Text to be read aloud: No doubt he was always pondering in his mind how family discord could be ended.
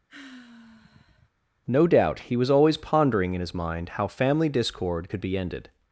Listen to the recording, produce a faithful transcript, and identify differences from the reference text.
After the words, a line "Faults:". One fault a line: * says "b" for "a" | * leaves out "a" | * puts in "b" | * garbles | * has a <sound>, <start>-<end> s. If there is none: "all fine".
No doubt he was always pondering in his mind how family discord could be ended.
Faults:
* has a sigh, 0.1-1.3 s